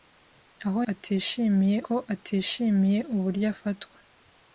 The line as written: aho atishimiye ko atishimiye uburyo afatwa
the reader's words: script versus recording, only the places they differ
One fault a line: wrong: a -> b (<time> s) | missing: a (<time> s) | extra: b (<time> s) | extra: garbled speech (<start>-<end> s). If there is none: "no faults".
no faults